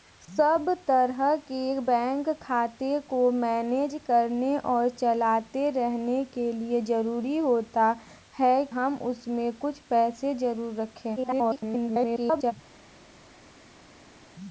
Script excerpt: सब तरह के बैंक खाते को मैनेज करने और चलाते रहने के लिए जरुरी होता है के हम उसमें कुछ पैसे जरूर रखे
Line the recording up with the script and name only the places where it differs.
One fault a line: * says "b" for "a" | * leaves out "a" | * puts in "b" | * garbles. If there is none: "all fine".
* leaves out "के"
* garbles